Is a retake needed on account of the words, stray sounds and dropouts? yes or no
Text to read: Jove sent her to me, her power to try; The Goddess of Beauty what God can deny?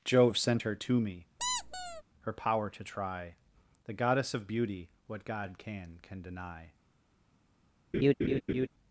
yes